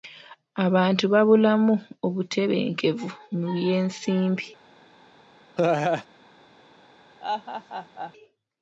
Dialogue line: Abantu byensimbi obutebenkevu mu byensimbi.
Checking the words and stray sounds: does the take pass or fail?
fail